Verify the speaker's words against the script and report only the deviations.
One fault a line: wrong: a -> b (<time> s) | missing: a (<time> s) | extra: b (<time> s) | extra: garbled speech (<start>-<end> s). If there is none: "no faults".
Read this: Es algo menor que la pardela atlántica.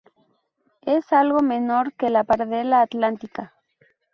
no faults